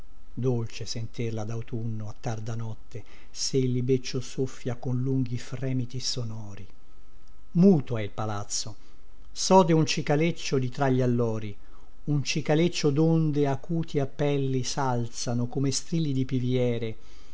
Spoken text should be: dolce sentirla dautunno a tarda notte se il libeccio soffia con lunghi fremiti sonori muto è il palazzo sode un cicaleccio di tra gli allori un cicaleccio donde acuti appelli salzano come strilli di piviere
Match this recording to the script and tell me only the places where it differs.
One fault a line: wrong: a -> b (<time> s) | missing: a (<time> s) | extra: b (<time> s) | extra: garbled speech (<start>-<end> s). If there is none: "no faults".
no faults